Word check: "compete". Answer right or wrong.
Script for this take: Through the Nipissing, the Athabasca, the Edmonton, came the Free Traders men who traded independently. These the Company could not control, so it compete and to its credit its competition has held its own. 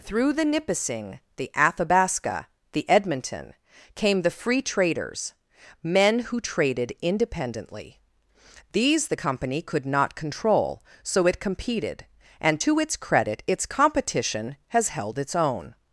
wrong